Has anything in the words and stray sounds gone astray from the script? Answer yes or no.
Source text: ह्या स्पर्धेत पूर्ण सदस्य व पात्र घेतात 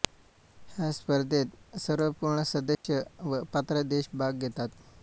yes